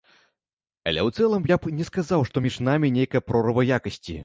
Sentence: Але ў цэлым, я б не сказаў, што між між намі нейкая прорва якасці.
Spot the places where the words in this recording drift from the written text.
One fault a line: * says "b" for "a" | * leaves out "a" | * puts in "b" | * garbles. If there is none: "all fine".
* leaves out "між"